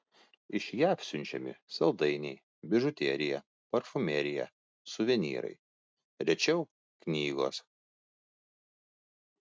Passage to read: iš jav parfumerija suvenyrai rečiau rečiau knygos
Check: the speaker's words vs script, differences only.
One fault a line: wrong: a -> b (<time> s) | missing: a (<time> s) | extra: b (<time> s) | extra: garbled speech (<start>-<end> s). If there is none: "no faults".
extra: siunčiami saldainiai bižuterija (1.1 s)
missing: rečiau (6.7 s)